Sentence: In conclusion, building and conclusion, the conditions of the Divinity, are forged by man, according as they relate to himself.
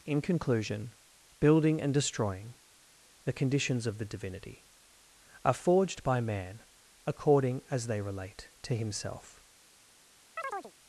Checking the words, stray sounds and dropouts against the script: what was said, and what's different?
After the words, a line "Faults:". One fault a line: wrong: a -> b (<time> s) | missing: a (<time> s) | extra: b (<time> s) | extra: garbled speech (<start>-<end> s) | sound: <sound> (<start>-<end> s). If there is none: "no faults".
In conclusion, building and destroying, the conditions of the Divinity, are forged by man, according as they relate to himself.
Faults:
wrong: conclusion -> destroying (1.9 s)
sound: chirp (10.4-10.7 s)